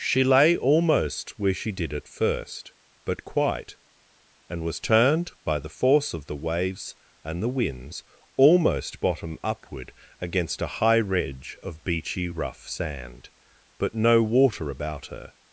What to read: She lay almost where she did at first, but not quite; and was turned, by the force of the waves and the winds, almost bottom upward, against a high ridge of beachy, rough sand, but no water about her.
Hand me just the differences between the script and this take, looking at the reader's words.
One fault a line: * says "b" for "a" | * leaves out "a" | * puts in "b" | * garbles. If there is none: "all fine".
* leaves out "not"